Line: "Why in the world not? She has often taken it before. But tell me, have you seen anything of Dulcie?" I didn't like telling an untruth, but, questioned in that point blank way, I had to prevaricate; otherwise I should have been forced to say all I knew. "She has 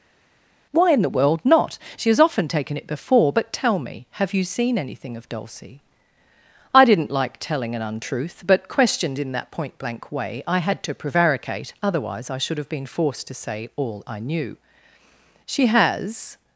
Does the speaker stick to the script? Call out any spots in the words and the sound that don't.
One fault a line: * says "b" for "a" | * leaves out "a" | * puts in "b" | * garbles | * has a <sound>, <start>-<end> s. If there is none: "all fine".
all fine